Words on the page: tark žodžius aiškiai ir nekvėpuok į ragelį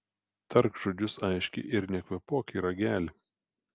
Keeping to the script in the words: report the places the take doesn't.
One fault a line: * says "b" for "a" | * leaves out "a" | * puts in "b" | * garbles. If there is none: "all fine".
all fine